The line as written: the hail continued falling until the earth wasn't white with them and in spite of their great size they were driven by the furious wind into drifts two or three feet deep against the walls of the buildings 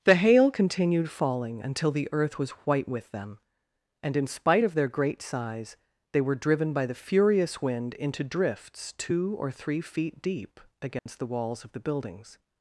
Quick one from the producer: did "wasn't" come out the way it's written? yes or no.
no